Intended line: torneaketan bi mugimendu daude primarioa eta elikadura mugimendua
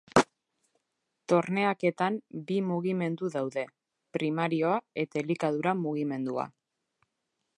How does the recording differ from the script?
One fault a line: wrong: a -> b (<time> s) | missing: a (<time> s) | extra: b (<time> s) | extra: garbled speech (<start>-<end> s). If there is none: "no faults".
no faults